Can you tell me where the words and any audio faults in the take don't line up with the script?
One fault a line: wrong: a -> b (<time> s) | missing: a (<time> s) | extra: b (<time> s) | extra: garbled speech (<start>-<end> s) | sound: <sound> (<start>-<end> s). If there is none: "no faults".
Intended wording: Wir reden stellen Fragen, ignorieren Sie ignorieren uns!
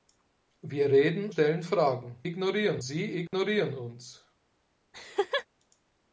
sound: dropout (3.3-3.3 s)
sound: laugh (4.9-5.5 s)